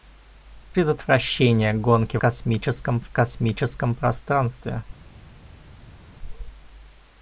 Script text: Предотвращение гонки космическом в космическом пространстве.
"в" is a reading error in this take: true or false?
false